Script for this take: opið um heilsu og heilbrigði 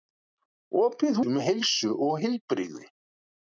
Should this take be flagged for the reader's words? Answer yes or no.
no